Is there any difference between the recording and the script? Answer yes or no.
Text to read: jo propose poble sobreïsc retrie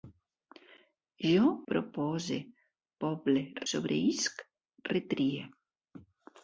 no